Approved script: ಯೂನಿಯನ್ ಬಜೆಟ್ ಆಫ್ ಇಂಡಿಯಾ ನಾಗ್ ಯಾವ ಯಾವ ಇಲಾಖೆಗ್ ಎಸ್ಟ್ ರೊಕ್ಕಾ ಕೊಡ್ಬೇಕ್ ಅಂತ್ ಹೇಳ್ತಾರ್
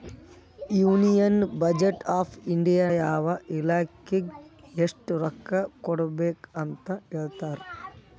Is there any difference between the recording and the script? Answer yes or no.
yes